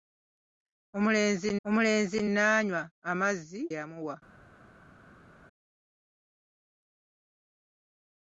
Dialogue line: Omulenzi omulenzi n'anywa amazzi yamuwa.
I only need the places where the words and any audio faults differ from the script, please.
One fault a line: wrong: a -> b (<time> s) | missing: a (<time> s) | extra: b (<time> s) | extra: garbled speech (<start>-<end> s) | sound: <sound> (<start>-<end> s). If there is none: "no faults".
no faults